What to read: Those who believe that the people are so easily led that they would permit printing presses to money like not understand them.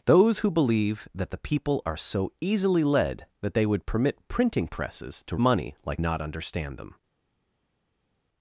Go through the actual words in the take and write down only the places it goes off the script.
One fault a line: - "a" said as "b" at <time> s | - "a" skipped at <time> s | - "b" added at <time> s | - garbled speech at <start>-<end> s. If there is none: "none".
none